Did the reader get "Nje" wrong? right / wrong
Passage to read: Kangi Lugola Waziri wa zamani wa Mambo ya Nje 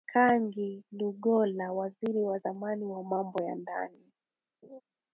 wrong